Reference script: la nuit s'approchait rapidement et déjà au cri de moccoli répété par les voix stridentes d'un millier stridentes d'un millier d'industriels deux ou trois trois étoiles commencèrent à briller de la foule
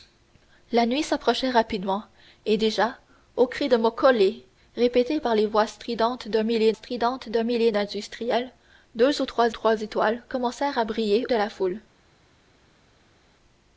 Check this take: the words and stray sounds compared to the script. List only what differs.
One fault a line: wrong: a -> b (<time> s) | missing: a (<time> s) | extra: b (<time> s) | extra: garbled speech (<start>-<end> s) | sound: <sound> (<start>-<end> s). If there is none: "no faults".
no faults